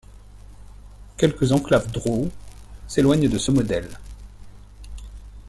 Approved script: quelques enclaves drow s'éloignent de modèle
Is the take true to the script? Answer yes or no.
no